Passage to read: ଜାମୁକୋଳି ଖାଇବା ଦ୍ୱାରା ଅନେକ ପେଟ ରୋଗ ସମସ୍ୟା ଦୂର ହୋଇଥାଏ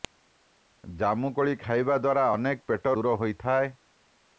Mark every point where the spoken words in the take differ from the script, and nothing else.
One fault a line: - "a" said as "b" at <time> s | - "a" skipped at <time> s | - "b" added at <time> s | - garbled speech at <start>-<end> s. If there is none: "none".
- "ରୋଗ ସମସ୍ୟା" skipped at 2.9 s